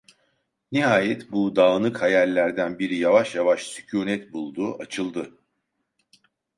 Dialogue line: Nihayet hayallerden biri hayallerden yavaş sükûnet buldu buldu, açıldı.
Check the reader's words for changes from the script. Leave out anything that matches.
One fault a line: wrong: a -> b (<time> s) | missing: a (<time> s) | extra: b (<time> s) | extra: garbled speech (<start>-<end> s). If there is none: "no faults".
extra: bu dağınık (1.3 s)
wrong: hayallerden -> yavaş (3.0 s)
missing: buldu (4.8 s)